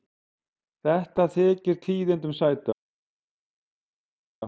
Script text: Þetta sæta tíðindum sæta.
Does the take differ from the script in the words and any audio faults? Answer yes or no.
yes